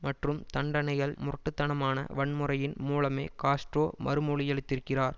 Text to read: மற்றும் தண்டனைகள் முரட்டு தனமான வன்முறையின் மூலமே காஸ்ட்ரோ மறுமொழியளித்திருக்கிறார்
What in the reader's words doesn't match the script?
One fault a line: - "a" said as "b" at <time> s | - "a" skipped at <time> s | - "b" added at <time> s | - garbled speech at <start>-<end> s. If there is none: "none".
none